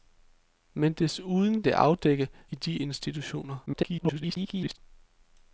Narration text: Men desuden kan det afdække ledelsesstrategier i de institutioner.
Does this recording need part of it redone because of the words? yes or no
yes